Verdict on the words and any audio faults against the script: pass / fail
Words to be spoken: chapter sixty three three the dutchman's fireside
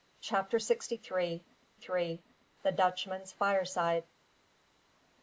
pass